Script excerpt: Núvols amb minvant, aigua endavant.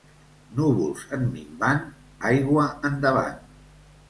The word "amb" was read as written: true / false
false